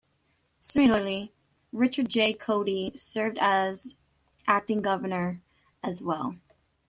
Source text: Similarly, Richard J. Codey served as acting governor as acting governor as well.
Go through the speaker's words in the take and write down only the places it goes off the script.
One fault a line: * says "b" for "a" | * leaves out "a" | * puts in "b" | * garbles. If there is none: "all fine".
* leaves out "acting governor as"